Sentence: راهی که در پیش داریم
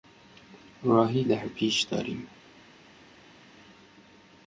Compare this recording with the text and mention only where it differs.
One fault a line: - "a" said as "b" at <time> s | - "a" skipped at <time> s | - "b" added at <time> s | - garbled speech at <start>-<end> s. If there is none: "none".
- "که" skipped at 1.2 s